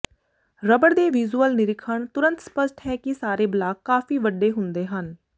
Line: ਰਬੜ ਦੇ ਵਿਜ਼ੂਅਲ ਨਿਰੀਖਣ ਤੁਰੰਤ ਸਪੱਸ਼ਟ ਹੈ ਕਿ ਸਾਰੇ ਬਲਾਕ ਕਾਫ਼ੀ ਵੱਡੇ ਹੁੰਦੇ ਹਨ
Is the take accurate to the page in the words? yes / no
yes